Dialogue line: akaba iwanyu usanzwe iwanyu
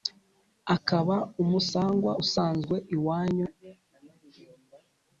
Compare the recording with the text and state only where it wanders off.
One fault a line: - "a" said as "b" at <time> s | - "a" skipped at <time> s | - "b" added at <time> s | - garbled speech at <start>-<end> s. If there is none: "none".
- "iwanyu" said as "umusangwa" at 1.4 s